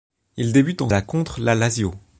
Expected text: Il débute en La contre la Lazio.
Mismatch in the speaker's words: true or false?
false